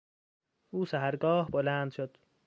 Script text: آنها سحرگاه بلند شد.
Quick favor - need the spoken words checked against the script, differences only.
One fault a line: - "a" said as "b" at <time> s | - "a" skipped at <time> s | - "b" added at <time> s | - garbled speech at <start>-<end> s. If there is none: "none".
- "آنها" said as "او" at 0.7 s